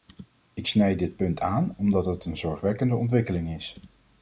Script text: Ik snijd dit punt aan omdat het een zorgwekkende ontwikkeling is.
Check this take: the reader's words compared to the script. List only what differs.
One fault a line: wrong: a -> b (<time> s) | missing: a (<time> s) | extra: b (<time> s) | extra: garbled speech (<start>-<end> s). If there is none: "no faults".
no faults